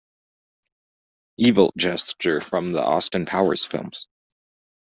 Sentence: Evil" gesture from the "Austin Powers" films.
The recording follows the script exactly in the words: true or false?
true